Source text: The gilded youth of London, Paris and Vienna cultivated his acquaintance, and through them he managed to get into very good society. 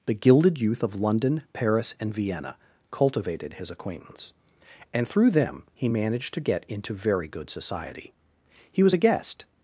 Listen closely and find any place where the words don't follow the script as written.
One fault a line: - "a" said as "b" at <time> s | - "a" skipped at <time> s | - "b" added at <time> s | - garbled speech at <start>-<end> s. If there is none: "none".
- "He was a guest" added at 8.7 s